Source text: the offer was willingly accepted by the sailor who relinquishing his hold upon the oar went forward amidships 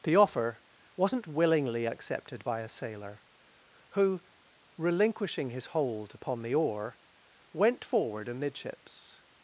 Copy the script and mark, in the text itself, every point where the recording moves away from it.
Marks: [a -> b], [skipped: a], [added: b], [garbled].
the offer [was -> wasn't] willingly accepted by [the -> a] sailor who relinquishing his hold upon the oar went forward amidships